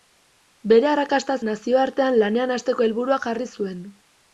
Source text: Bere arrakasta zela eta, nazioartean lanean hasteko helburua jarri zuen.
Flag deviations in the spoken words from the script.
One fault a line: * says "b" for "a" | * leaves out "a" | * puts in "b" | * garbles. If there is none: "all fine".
* leaves out "zela eta"